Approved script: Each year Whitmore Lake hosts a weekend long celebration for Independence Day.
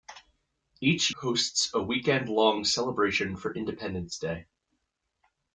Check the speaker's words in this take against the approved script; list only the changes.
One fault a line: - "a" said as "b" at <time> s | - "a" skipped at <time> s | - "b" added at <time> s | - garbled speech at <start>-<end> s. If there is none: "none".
- "year Whitmore Lake" skipped at 1.1 s